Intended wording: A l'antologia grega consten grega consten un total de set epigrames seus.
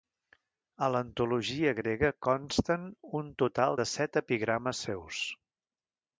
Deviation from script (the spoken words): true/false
true